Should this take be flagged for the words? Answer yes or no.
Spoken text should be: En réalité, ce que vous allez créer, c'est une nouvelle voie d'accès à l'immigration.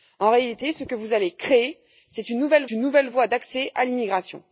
yes